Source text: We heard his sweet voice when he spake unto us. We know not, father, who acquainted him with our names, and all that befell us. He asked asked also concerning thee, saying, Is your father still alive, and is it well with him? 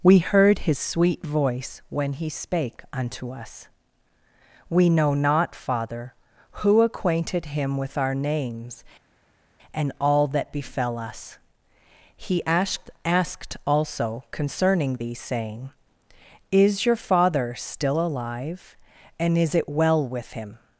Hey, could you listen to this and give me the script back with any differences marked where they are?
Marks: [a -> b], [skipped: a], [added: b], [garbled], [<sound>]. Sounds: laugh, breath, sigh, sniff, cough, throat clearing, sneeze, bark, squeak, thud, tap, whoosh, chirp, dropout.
We heard his sweet voice when he spake unto us. We know not, father, who acquainted him with our names, and all that befell us. He asked asked also concerning thee, saying, Is your father still alive, and is it well with him?